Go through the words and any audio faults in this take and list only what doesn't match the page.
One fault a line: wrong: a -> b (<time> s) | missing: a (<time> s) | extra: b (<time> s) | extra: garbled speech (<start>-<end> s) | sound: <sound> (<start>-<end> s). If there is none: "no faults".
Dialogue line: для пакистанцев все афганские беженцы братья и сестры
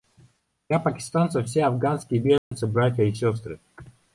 sound: dropout (2.4-2.5 s)